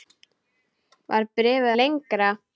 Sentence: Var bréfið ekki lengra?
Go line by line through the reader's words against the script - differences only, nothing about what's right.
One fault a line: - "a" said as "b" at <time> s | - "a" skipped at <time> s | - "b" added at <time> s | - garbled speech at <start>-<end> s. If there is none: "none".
- "ekki" skipped at 1.7 s